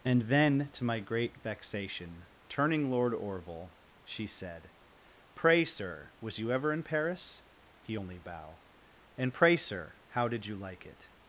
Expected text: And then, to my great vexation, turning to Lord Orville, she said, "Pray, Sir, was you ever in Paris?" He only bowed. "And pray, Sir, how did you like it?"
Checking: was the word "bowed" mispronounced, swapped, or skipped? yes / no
yes